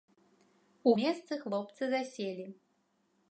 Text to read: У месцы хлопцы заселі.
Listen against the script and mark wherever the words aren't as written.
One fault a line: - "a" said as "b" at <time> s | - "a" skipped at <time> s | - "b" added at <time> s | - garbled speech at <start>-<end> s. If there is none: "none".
none